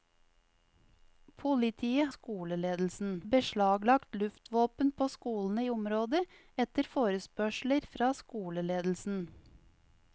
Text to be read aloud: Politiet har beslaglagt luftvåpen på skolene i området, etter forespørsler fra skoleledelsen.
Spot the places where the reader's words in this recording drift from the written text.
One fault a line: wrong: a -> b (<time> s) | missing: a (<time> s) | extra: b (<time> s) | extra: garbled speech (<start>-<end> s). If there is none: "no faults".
wrong: har -> skoleledelsen (2.1 s)